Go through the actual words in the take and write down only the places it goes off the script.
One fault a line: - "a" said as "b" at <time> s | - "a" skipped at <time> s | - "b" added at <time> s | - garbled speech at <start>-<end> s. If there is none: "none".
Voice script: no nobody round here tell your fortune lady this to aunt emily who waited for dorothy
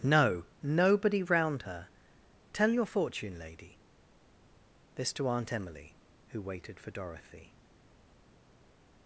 - "here" said as "her" at 1.6 s